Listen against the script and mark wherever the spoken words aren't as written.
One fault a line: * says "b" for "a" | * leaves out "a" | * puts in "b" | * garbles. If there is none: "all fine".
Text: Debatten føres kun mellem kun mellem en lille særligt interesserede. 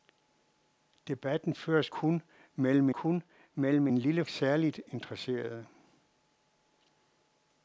all fine